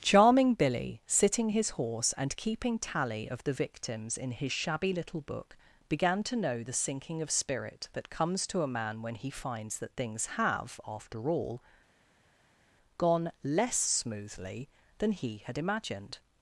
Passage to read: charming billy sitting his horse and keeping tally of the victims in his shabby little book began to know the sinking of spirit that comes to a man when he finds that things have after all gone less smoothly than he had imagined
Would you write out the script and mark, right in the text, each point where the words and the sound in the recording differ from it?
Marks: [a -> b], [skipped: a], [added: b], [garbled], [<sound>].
charming billy sitting his horse and keeping tally of the victims in his shabby little book began to know the sinking of spirit that comes to a man when he finds that things have after all gone less smoothly than he had imagined